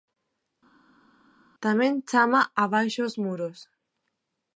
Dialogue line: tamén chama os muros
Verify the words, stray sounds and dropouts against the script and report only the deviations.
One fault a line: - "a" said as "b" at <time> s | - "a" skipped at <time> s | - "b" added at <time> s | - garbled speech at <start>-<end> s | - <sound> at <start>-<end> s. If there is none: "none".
- "abaixo" added at 2.6 s